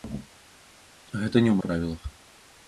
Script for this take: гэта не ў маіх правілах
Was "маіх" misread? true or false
true